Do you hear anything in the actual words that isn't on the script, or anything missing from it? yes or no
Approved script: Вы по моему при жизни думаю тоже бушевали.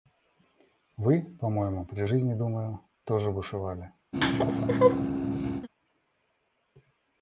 no